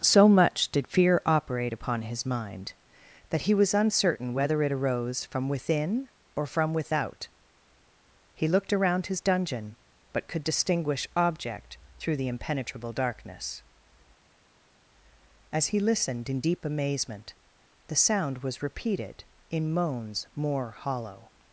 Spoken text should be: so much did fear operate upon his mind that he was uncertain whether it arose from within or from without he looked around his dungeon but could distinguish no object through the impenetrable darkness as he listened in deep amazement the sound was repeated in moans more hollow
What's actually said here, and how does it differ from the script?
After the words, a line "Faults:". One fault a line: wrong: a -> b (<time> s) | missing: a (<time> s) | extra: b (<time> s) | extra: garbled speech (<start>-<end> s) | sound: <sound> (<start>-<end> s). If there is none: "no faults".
so much did fear operate upon his mind that he was uncertain whether it arose from within or from without he looked around his dungeon but could distinguish object through the impenetrable darkness as he listened in deep amazement the sound was repeated in moans more hollow
Faults:
missing: no (11.0 s)